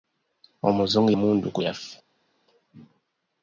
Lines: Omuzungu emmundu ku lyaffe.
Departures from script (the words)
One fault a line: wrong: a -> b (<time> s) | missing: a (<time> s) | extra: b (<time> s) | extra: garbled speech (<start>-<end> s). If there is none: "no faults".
no faults